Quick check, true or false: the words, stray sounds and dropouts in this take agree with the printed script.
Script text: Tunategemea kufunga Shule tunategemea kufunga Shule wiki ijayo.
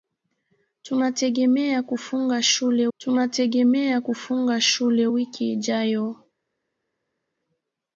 true